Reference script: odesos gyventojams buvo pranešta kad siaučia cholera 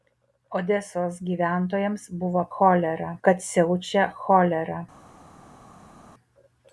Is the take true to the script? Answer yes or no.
no